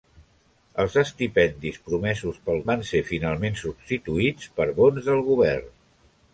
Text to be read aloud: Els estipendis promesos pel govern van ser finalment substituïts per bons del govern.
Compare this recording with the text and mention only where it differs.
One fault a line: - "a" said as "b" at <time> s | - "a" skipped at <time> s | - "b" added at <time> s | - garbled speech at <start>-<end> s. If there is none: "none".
- "govern" skipped at 2.6 s